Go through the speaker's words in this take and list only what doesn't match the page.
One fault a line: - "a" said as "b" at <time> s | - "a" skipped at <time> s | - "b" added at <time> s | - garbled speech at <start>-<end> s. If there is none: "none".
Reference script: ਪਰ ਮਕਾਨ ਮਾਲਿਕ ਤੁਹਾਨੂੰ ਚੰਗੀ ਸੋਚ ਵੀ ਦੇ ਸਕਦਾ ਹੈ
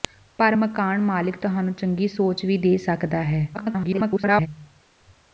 - garbled speech at 3.5-4.5 s